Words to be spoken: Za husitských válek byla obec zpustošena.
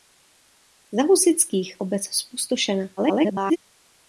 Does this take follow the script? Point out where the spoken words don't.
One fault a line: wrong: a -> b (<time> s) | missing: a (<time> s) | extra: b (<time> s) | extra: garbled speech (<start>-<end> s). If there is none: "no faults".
missing: válek byla (1.8 s)
extra: garbled speech (3.0-3.6 s)